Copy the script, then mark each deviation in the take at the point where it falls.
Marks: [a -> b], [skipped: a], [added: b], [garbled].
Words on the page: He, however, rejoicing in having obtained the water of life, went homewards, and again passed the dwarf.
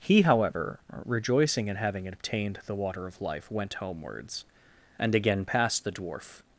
He, however, rejoicing in having obtained the water of life, went homewards, and again passed the dwarf.